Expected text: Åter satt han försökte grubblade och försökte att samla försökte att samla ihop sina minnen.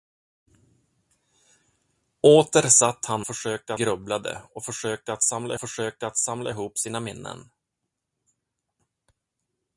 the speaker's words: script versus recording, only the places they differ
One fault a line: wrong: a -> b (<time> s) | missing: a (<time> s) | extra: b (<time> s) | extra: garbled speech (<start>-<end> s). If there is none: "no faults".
no faults